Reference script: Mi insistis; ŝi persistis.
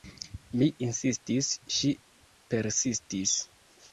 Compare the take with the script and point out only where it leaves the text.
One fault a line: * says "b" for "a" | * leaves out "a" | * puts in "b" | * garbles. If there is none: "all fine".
all fine